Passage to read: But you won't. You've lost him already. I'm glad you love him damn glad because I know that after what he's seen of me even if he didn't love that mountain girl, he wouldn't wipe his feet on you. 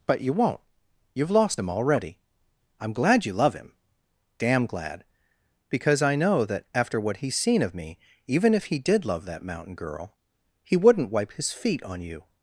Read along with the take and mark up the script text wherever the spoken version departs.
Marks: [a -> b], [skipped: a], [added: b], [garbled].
But you won't. You've lost him already. I'm glad you love him damn glad because I know that after what he's seen of me even if he [didn't -> did] love that mountain girl, he wouldn't wipe his feet on you.